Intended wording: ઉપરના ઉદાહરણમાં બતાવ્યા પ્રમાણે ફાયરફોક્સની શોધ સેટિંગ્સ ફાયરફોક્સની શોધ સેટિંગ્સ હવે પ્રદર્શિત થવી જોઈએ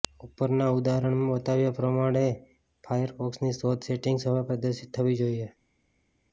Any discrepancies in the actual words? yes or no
yes